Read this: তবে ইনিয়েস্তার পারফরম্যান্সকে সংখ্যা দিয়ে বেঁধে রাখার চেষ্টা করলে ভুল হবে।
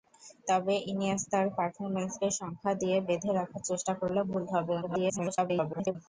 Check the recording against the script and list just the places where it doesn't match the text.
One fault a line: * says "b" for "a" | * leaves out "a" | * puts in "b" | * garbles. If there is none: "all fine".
* garbles